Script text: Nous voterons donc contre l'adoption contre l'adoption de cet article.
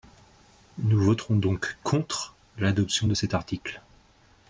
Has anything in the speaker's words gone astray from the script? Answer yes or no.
yes